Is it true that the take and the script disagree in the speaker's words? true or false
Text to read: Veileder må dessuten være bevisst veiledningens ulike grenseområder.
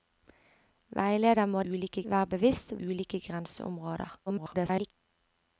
true